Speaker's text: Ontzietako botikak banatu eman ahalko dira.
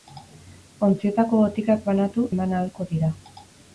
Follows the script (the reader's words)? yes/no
yes